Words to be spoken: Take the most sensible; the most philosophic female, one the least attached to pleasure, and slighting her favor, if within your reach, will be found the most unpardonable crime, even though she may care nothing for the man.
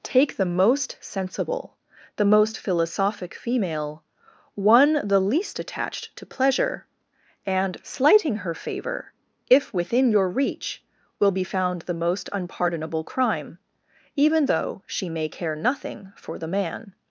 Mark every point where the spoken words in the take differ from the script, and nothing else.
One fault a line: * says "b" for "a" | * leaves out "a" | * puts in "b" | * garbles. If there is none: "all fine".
all fine